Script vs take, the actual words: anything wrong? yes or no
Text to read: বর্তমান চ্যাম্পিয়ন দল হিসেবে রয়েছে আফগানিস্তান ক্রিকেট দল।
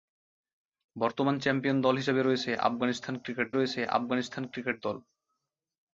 yes